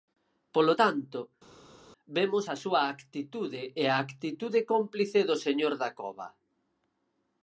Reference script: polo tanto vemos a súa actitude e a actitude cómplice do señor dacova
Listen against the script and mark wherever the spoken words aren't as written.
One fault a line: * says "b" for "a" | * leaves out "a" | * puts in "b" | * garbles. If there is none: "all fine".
all fine